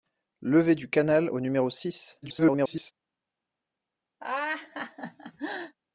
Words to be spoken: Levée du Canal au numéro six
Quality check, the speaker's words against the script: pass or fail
fail